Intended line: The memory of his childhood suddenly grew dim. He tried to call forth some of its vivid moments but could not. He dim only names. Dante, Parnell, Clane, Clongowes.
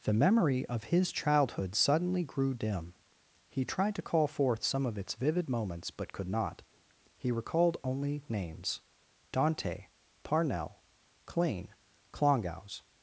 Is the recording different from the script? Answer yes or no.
yes